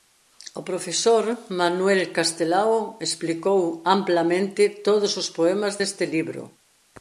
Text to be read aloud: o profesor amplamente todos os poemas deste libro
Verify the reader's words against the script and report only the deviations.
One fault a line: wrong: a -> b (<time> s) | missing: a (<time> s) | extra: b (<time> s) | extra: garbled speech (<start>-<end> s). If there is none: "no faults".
extra: manuel castelao explicou (1.6 s)